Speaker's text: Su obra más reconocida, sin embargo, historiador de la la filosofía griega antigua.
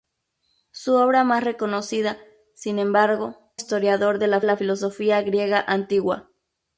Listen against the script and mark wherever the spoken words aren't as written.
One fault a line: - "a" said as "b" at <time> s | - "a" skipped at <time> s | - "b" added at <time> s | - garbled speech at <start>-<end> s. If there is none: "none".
none